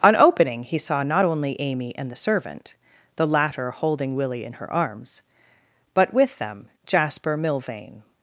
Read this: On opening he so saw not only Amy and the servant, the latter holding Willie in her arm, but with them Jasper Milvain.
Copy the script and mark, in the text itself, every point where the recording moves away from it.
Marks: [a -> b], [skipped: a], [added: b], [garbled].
On opening he [skipped: so] saw not only Amy and the servant, the latter holding Willie in her [arm, -> arms] but with them Jasper Milvain.